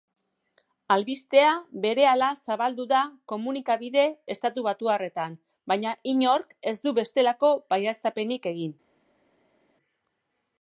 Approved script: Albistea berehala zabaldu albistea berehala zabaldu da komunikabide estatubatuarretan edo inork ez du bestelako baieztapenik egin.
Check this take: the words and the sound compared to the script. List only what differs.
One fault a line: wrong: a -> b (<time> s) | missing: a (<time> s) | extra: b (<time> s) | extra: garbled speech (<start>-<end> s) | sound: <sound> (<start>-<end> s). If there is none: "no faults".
missing: albistea berehala zabaldu (2.9 s)
wrong: edo -> baina (5.7 s)